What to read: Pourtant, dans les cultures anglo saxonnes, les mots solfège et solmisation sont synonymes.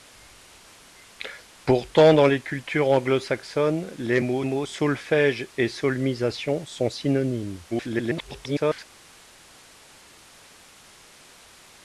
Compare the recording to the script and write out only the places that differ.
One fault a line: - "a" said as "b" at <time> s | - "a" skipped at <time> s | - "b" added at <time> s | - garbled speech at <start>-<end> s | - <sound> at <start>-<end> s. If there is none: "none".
- "mots" added at 4.4 s
- garbled speech at 7.7-8.9 s